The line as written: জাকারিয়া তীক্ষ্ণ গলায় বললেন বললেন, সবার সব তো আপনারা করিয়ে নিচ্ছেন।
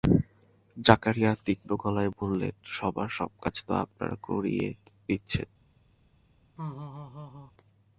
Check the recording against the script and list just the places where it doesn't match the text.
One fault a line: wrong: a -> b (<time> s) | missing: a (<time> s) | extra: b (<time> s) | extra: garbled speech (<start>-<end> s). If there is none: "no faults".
missing: বললেন (2.5 s)
extra: কাজ (3.4 s)